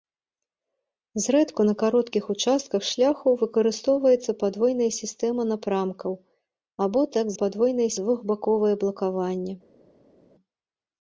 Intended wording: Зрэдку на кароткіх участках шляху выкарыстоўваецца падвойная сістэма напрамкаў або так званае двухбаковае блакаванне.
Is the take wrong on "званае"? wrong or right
wrong